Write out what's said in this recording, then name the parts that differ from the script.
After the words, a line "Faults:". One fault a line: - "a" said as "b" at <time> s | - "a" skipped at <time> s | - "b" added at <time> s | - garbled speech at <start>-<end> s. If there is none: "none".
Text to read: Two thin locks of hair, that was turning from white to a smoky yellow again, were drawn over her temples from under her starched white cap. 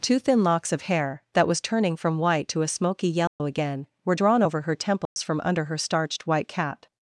Two thin locks of hair, that was turning from white to a smoky yellow again, were drawn over her temples from under her starched white cap.
Faults:
none